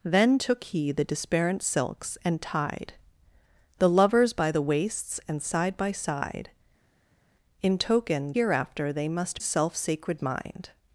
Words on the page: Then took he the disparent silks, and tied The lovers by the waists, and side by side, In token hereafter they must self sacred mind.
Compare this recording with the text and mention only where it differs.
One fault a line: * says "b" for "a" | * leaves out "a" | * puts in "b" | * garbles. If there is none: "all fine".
all fine